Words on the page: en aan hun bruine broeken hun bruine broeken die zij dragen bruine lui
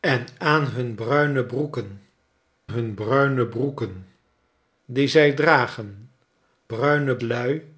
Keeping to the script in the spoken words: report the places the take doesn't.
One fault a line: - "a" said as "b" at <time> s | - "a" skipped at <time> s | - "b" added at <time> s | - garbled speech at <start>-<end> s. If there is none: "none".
none